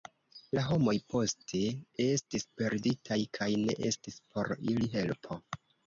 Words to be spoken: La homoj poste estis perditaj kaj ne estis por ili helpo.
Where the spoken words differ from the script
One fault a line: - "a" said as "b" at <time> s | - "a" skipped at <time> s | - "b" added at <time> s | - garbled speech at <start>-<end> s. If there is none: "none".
none